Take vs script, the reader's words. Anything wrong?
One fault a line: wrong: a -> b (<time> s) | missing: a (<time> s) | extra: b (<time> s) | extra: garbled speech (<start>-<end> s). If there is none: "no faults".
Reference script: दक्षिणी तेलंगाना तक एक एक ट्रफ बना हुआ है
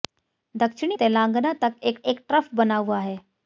no faults